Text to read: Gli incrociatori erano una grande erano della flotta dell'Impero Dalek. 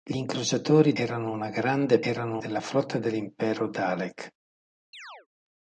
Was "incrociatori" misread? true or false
false